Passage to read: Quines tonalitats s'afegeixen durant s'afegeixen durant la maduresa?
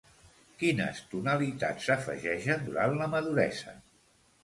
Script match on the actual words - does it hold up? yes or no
no